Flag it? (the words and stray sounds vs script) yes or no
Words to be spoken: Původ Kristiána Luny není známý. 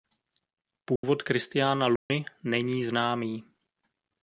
yes